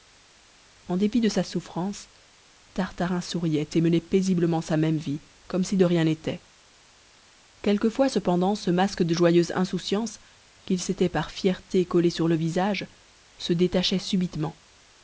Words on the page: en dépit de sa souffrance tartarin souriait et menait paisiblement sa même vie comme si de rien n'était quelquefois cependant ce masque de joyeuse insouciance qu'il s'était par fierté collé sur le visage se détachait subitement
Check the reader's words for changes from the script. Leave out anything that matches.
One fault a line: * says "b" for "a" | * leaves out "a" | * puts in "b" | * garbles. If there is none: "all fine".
all fine